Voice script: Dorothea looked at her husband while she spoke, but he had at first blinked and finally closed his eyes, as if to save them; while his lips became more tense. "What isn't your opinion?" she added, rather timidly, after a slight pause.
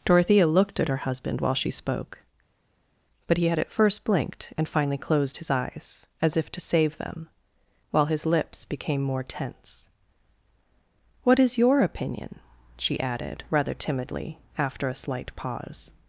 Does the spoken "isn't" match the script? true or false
false